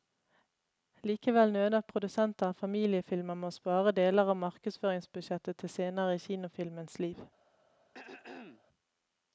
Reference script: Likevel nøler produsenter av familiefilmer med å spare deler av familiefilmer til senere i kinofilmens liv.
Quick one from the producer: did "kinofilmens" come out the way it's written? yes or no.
yes